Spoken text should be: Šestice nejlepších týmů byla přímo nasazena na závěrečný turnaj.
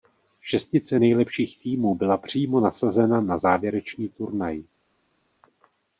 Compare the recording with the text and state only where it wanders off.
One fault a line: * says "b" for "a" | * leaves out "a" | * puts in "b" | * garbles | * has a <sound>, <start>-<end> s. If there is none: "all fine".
all fine